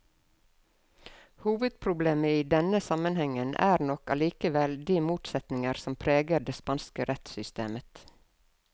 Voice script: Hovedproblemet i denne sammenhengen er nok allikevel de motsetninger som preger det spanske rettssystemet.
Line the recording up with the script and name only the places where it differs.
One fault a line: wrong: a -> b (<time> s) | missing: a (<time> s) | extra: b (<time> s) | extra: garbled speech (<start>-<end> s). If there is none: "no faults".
no faults